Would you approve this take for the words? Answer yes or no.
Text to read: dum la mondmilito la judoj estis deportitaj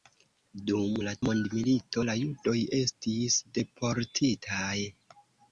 yes